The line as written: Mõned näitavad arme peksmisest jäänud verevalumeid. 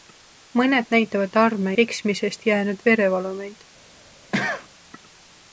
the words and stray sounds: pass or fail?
fail